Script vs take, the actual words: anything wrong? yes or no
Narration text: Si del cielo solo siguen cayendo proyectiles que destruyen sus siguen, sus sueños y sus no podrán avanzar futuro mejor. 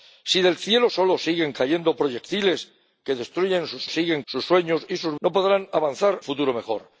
no